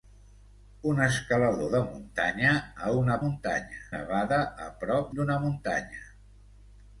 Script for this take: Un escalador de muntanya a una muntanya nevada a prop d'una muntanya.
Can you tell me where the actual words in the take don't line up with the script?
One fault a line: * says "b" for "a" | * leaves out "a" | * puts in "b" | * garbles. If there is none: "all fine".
all fine